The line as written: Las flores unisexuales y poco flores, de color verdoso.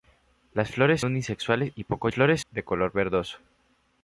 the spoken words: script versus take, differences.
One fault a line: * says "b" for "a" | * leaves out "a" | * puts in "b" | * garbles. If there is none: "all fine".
all fine